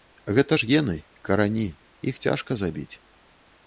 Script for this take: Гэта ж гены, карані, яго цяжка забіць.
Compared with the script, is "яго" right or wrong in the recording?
wrong